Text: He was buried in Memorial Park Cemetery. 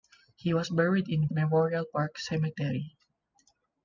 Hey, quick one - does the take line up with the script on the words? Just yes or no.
yes